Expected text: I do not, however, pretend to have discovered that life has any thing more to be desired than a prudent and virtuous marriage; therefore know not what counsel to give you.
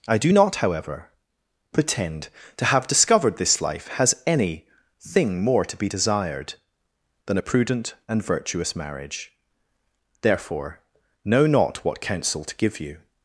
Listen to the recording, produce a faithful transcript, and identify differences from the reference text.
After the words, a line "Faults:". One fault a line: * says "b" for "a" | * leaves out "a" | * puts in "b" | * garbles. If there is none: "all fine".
I do not, however, pretend to have discovered this life has any thing more to be desired than a prudent and virtuous marriage; therefore know not what counsel to give you.
Faults:
* says "this" for "that"